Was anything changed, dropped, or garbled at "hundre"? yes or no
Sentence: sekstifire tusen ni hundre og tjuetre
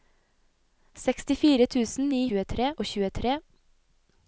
yes